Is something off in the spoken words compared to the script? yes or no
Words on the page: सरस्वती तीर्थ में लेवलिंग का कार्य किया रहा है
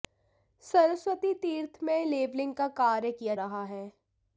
no